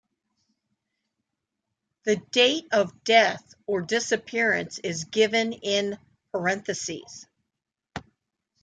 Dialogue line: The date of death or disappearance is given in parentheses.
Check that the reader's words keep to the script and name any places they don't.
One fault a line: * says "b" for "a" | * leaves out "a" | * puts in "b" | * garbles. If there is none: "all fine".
all fine